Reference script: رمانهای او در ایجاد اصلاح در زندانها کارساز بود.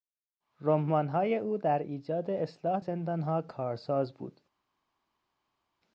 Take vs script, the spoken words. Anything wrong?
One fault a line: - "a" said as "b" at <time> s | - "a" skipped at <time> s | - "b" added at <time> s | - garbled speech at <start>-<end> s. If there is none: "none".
- "در" skipped at 2.8 s